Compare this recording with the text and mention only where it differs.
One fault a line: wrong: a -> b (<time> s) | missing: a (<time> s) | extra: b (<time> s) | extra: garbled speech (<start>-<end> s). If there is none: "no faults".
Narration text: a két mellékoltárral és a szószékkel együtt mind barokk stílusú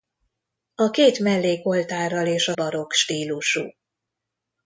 missing: szószékkel együtt mind (2.5 s)